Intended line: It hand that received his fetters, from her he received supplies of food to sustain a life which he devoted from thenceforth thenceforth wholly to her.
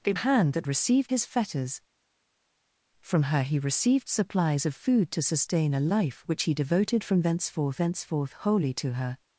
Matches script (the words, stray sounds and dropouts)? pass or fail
pass